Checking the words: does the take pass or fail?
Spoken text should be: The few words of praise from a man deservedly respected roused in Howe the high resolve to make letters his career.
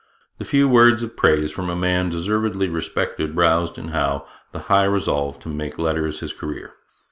pass